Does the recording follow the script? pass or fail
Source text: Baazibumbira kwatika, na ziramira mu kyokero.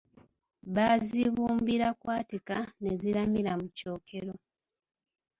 fail